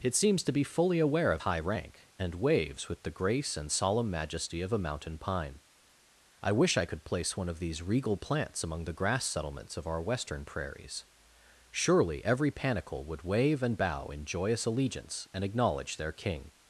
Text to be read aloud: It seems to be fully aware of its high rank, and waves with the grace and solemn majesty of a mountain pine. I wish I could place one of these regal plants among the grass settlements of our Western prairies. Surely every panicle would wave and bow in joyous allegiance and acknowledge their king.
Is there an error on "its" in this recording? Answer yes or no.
yes